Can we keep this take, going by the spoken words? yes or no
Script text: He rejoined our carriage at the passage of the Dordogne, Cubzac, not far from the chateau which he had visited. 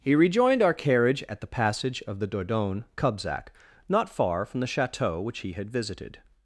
yes